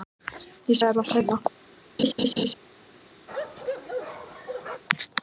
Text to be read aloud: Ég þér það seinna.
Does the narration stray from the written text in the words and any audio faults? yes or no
yes